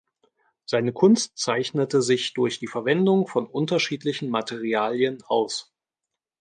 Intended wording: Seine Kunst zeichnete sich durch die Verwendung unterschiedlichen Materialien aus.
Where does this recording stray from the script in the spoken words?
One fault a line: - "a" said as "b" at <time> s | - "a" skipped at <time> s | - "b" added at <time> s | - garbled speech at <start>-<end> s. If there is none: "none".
- "von" added at 3.3 s